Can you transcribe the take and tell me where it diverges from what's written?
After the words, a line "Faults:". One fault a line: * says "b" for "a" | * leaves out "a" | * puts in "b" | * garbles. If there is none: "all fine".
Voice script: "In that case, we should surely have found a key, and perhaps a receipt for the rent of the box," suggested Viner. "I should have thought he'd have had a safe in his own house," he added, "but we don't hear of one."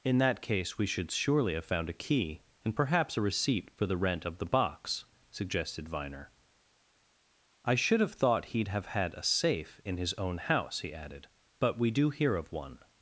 "In that case, we should surely have found a key, and perhaps a receipt for the rent of the box," suggested Viner. "I should have thought he'd have had a safe in his own house," he added, "but we do hear of one."
Faults:
* says "do" for "don't"